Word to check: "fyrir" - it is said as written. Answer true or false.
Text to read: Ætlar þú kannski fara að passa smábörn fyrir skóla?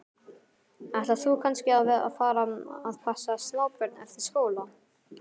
false